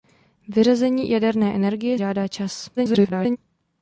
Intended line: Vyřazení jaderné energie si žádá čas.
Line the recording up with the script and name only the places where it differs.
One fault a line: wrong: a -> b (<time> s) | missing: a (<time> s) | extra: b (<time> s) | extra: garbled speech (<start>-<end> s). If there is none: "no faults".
missing: si (2.0 s)
extra: garbled speech (2.8-3.4 s)